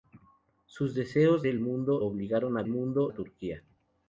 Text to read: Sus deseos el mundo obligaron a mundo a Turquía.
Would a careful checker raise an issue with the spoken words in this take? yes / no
no